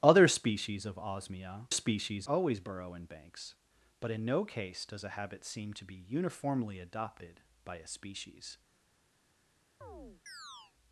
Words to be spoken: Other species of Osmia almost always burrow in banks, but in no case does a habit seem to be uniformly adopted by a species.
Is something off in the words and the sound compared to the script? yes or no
yes